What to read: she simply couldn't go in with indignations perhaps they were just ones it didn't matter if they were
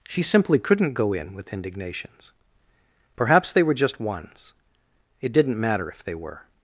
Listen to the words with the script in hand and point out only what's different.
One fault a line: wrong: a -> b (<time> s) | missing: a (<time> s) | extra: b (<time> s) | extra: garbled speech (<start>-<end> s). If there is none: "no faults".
no faults